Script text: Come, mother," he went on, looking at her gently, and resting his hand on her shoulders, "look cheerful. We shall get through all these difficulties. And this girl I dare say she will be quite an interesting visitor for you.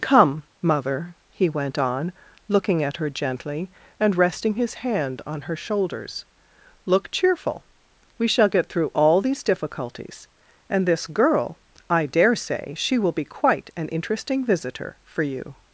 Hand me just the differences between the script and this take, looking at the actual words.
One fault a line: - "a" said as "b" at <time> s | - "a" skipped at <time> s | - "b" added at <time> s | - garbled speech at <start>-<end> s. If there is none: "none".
none